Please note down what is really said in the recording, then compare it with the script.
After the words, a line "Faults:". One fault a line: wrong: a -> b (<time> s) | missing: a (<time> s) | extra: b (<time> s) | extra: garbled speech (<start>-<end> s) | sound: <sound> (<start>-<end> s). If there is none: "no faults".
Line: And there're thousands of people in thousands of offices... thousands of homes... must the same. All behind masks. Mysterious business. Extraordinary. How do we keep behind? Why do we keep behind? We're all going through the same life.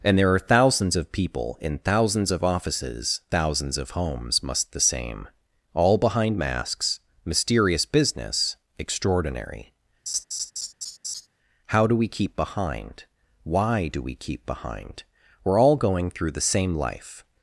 And there're thousands of people in thousands of offices... thousands of homes... must the same. All behind masks. Mysterious business. Extraordinary. How do we keep behind? Why do we keep behind? We're all going through the same life.
Faults:
sound: laugh (10.1-11.3 s)